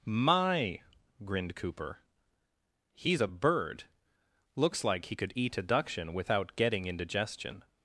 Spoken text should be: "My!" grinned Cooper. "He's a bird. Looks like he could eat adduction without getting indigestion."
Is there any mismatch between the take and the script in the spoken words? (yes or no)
no